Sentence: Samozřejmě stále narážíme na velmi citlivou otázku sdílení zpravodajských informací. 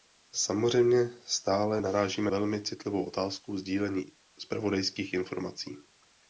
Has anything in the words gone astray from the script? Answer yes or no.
yes